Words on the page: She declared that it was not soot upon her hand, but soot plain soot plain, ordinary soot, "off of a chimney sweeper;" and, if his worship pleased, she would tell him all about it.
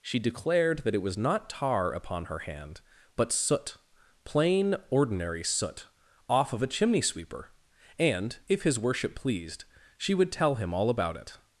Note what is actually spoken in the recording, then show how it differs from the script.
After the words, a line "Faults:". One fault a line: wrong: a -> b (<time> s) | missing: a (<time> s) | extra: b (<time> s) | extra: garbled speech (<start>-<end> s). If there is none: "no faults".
She declared that it was not tar upon her hand, but soot plain, ordinary soot, "off of a chimney sweeper;" and, if his worship pleased, she would tell him all about it.
Faults:
wrong: soot -> tar (1.5 s)
missing: soot plain (4.8 s)